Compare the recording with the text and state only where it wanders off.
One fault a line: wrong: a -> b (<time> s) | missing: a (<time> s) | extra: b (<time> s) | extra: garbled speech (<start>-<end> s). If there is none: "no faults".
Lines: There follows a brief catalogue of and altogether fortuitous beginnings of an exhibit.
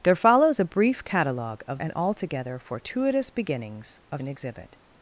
no faults